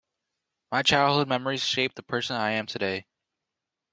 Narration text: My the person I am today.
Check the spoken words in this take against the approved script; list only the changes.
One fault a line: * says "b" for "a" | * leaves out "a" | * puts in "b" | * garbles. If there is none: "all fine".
* puts in "childhood memories shaped"